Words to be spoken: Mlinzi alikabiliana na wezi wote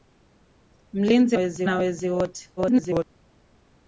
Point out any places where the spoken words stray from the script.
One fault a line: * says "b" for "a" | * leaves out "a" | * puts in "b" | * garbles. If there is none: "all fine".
* says "wezi" for "alikabiliana"
* garbles